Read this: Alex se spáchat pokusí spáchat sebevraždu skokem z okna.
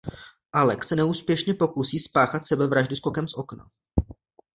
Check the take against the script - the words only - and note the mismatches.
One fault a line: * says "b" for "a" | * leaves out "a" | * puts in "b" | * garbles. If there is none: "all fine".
* says "neúspěšně" for "spáchat"